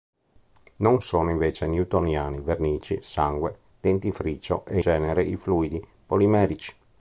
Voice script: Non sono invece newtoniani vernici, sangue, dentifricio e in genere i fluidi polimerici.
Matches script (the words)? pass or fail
fail